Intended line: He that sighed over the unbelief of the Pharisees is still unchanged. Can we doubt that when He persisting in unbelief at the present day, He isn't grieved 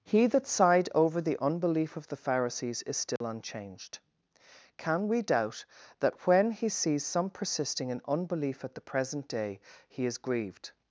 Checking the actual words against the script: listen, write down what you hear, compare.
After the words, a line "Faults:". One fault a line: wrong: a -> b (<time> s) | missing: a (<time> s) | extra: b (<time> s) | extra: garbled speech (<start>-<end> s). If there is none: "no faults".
He that sighed over the unbelief of the Pharisees is still unchanged. Can we doubt that when He sees some persisting in unbelief at the present day, He is grieved
Faults:
extra: sees some (6.7 s)
wrong: isn't -> is (10.1 s)